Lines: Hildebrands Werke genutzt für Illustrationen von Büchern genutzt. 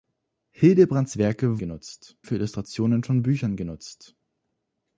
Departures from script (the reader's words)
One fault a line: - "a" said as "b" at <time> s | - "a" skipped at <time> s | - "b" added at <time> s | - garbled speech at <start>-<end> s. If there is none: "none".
none